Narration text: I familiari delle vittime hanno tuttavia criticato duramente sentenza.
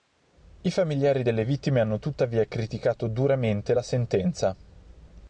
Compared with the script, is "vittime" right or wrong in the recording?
right